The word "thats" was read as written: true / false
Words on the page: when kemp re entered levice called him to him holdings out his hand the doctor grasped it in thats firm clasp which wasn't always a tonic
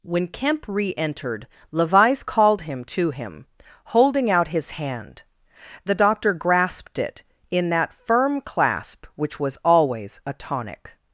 false